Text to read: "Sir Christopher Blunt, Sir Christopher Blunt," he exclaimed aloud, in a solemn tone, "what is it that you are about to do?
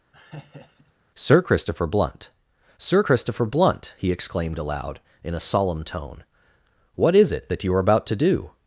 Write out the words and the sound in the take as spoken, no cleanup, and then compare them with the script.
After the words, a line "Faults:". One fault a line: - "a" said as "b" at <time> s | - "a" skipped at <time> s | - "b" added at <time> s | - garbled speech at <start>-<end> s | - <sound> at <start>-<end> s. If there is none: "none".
"Sir Christopher Blunt, Sir Christopher Blunt," he exclaimed aloud, in a solemn tone, "what is it that you are about to do?
Faults:
- laugh at 0.1-0.9 s